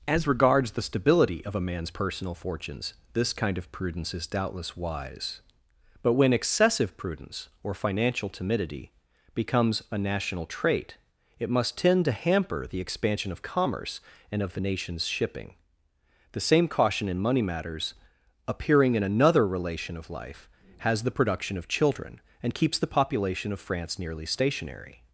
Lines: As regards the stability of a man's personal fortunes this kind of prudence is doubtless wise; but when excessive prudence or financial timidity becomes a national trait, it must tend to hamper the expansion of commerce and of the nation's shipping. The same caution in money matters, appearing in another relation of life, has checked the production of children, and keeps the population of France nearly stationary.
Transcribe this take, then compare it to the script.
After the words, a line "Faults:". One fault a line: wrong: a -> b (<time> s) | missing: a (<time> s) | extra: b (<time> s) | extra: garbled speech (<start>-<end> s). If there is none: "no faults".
As regards the stability of a man's personal fortunes this kind of prudence is doubtless wise; but when excessive prudence or financial timidity becomes a national trait, it must tend to hamper the expansion of commerce and of the nation's shipping. The same caution in money matters, appearing in another relation of life, has the production of children, and keeps the population of France nearly stationary.
Faults:
missing: checked (21.0 s)